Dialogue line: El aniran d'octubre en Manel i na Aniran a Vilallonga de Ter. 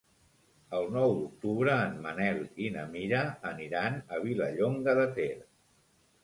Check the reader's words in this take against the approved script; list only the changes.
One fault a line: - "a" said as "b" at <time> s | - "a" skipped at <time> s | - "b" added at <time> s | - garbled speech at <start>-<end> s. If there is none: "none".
- "aniran" said as "nou" at 0.9 s
- "Mira" added at 3.0 s